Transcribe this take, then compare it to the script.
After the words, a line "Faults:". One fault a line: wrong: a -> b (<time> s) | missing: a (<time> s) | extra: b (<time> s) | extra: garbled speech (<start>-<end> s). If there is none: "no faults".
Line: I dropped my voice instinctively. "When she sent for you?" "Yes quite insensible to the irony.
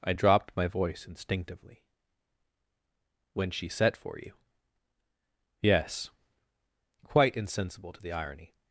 I dropped my voice instinctively. "When she set for you?" "Yes quite insensible to the irony.
Faults:
wrong: sent -> set (3.7 s)